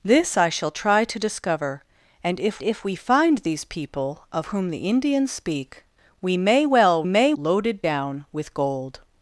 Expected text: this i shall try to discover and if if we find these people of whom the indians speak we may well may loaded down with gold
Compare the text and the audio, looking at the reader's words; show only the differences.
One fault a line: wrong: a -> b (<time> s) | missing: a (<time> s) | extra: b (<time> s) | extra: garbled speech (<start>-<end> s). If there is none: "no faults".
no faults